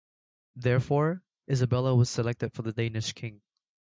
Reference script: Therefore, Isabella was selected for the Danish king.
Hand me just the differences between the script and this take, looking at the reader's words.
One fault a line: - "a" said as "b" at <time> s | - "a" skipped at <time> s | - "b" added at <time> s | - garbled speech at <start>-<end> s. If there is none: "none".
none